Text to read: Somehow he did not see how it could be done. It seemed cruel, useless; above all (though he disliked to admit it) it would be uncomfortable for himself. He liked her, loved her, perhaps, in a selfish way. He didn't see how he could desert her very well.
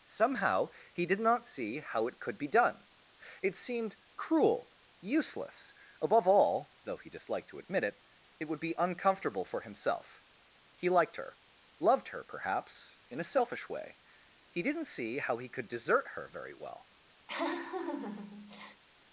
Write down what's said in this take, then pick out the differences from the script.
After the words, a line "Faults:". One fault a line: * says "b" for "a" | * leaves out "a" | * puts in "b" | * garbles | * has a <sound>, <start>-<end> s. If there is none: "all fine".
Somehow he did not see how it could be done. It seemed cruel, useless; above all (though he disliked to admit it) it would be uncomfortable for himself. He liked her, loved her, perhaps, in a selfish way. He didn't see how he could desert her very well.
Faults:
* has a laugh, 17.3-18.8 s